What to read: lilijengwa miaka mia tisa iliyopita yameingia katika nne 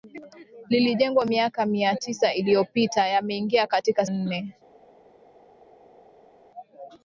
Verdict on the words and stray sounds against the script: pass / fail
pass